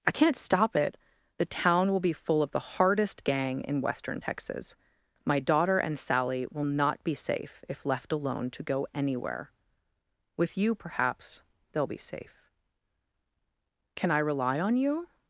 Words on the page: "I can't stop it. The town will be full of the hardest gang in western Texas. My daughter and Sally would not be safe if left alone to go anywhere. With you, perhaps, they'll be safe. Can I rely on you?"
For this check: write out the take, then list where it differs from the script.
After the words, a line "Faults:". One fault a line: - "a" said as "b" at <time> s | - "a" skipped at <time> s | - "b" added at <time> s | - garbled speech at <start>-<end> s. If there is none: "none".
"I can't stop it. The town will be full of the hardest gang in western Texas. My daughter and Sally will not be safe if left alone to go anywhere. With you, perhaps, they'll be safe. Can I rely on you?"
Faults:
- "would" said as "will" at 6.5 s